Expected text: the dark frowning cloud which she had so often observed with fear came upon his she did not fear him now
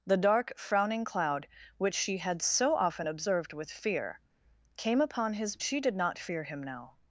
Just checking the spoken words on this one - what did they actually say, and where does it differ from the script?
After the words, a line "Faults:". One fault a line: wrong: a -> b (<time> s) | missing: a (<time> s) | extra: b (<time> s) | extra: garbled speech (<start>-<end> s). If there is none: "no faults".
the dark frowning cloud which she had so often observed with fear came upon his she did not fear him now
Faults:
no faults